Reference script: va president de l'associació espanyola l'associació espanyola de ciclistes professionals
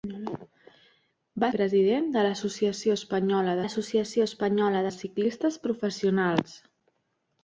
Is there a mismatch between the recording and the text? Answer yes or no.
no